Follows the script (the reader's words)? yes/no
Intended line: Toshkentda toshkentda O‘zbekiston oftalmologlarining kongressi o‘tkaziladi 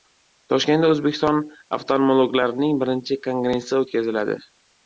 no